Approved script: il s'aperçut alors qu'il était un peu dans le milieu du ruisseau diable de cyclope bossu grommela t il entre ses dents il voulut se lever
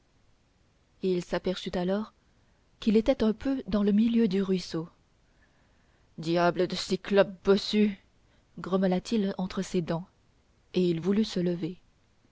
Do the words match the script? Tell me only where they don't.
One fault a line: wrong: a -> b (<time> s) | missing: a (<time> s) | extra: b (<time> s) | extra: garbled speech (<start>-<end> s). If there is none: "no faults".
extra: et (10.7 s)